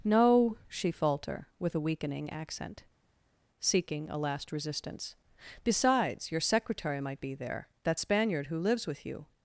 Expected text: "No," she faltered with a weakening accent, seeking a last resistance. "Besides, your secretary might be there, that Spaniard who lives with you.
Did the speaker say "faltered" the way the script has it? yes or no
no